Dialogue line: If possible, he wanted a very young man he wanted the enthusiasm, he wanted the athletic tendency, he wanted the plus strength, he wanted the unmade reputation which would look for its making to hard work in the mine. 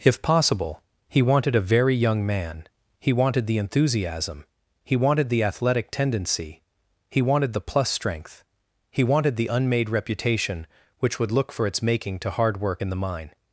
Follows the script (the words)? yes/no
yes